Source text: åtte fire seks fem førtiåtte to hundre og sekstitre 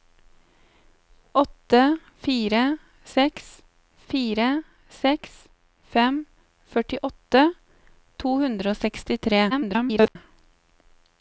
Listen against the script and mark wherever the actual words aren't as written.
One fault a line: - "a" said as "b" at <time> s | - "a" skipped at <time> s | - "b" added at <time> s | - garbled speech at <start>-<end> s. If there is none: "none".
- "fire seks" added at 4.1 s
- garbled speech at 9.5-10.2 s